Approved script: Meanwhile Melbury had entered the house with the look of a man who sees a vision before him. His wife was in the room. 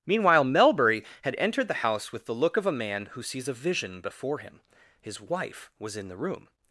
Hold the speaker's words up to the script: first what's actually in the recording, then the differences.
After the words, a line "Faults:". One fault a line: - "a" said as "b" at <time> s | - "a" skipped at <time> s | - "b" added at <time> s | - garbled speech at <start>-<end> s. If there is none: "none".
Meanwhile Melbury had entered the house with the look of a man who sees a vision before him. His wife was in the room.
Faults:
none